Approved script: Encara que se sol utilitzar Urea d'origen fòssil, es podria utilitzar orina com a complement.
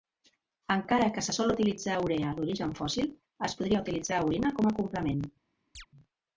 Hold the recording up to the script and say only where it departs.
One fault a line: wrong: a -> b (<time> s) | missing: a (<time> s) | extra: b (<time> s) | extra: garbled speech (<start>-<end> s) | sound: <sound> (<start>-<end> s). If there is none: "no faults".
sound: chirp (5.7-5.9 s)